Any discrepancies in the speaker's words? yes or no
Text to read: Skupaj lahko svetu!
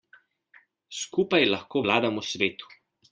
yes